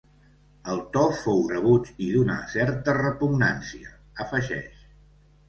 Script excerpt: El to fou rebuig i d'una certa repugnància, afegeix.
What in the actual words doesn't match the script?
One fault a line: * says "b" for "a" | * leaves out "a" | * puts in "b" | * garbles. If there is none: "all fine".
all fine